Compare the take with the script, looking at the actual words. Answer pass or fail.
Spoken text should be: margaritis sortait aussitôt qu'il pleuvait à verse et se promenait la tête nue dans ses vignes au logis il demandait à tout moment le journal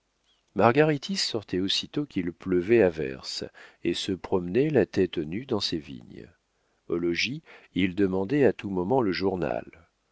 pass